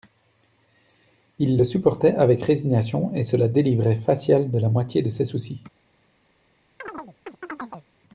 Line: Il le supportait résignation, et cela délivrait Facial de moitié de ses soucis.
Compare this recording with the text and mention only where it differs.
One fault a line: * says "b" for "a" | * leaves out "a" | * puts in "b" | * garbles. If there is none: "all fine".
* puts in "avec"
* puts in "la"